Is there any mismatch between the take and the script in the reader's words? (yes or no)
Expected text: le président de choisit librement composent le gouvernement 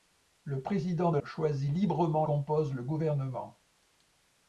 no